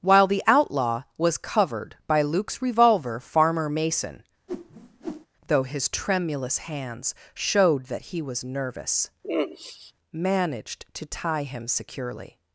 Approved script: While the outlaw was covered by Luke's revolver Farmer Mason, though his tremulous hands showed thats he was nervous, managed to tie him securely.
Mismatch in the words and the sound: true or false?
true